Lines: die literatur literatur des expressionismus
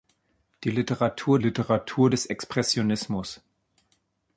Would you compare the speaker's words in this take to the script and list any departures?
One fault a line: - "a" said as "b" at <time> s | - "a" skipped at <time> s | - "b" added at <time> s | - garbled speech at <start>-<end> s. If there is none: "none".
none